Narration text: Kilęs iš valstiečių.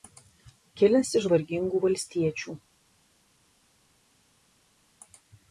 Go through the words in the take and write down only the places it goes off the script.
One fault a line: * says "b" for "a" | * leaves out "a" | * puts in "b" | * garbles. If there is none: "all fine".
* puts in "vargingų"